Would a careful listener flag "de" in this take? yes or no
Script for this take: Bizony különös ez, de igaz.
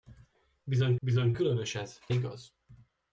yes